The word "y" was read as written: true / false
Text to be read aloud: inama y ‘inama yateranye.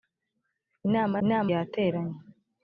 true